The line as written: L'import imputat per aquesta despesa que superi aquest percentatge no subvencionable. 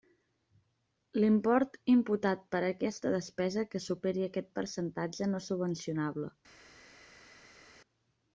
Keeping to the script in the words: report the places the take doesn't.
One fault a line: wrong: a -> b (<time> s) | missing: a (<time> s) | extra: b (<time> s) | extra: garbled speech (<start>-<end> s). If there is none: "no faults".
no faults